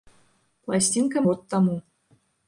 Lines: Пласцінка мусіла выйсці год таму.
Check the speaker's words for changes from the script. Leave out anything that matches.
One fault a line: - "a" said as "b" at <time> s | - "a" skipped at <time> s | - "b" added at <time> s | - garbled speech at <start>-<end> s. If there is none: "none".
- "мусіла выйсці" skipped at 1.2 s